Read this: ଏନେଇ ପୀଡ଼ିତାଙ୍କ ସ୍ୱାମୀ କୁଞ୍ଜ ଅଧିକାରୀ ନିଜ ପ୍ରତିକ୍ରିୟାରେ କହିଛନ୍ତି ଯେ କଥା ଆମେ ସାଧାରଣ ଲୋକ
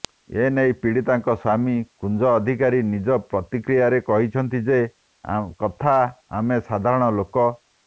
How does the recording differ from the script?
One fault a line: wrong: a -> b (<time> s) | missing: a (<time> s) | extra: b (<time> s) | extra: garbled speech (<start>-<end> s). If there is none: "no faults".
no faults